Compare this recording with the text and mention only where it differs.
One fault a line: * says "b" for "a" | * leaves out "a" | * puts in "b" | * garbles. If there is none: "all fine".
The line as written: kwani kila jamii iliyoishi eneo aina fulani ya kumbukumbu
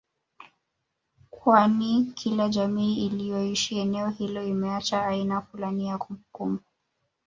* puts in "hilo imeacha"